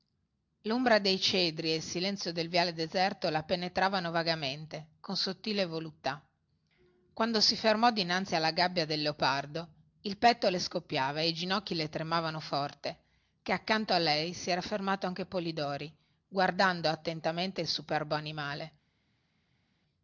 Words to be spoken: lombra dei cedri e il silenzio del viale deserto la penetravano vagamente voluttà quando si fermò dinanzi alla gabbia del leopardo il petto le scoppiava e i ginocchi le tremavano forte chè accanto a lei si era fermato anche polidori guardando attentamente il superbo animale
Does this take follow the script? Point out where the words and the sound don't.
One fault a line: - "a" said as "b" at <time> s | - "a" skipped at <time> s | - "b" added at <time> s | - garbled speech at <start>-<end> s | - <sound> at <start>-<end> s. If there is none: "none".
- "con sottile" added at 5.0 s